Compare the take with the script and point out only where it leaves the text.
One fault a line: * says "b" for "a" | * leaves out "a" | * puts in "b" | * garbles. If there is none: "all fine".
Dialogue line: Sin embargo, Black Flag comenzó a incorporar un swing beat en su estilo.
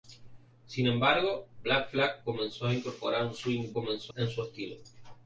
* says "comenzó" for "beat"